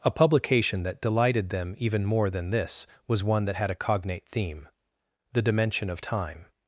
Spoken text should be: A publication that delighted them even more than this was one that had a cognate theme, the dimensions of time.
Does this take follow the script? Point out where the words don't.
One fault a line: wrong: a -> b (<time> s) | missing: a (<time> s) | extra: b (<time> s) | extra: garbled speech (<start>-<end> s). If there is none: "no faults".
wrong: dimensions -> dimension (5.4 s)